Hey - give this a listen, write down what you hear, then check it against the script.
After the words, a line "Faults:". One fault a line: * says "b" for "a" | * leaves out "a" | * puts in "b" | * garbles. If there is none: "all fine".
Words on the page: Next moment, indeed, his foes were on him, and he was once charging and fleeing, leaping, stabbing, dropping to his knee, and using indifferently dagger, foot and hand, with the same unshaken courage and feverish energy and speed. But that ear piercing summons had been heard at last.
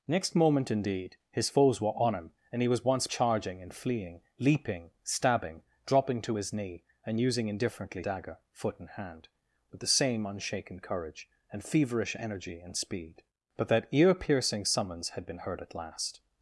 Next moment, indeed, his foes were on him, and he was once charging and fleeing, leaping, stabbing, dropping to his knee, and using indifferently dagger, foot and hand, with the same unshaken courage and feverish energy and speed. But that ear piercing summons had been heard at last.
Faults:
all fine